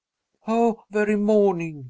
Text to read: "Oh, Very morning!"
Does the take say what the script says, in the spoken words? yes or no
yes